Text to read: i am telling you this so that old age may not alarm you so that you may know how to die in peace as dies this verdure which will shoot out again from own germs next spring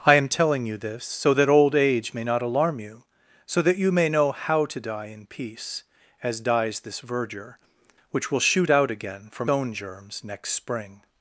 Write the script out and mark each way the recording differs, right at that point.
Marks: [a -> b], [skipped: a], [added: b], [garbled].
i am telling you this so that old age may not alarm you so that you may know how to die in peace as dies this verdure which will shoot out again from own germs next spring